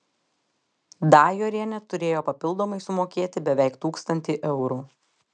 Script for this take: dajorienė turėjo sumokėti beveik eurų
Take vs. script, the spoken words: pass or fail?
fail